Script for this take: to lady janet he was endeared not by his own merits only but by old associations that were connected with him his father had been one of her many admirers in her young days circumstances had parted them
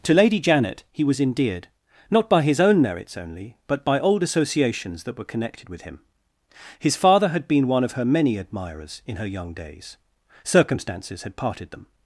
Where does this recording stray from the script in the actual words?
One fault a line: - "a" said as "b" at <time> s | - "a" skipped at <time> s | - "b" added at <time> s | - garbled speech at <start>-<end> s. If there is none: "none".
none